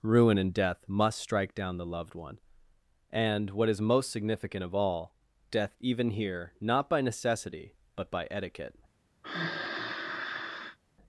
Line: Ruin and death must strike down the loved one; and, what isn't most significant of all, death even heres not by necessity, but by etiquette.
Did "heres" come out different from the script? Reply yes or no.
yes